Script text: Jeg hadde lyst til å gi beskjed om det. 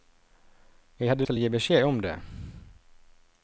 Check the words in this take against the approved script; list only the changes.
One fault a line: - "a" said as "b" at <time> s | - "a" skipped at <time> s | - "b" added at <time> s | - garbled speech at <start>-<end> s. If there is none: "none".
- "lyst" skipped at 1.2 s